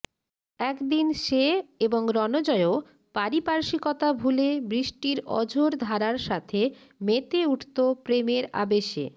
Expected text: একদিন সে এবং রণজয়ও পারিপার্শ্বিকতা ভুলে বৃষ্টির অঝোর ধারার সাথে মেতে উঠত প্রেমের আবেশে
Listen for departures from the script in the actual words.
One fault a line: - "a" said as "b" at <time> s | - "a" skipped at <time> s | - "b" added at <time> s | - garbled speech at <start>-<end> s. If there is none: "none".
none